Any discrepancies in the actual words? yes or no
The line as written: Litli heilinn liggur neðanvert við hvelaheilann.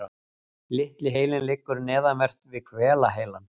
no